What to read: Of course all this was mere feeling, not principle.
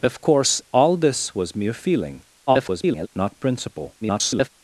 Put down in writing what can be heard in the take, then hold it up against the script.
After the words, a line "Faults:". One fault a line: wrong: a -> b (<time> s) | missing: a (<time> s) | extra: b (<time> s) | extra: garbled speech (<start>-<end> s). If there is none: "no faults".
Of course all this was mere feeling, [garbled] not principle. [garbled]
Faults:
extra: garbled speech (2.5-3.1 s)
extra: garbled speech (4.0-4.5 s)